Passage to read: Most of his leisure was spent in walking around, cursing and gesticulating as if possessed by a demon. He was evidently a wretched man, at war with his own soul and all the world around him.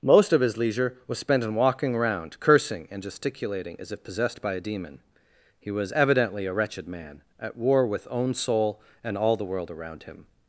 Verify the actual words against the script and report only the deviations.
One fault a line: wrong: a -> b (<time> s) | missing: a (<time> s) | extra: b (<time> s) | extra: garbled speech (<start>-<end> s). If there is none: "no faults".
missing: his (8.1 s)